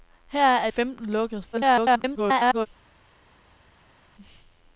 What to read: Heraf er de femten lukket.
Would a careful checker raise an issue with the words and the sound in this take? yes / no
yes